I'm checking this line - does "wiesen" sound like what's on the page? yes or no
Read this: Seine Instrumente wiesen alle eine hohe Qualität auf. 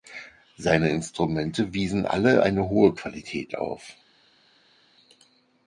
yes